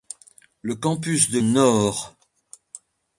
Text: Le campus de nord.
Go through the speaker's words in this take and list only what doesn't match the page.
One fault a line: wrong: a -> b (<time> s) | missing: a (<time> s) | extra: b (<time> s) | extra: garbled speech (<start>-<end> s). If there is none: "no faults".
no faults